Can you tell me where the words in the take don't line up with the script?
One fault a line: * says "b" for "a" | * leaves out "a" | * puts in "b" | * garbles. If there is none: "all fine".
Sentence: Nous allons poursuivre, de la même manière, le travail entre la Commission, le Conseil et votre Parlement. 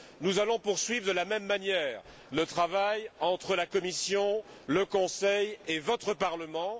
all fine